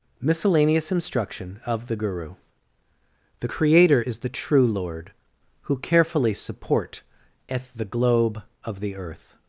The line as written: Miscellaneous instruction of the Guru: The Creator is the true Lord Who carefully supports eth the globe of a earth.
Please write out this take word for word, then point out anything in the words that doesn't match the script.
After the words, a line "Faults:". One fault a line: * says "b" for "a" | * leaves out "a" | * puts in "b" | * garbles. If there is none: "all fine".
Miscellaneous instruction of the Guru: The Creator is the true Lord Who carefully support eth the globe of the earth.
Faults:
* says "support" for "supports"
* says "the" for "a"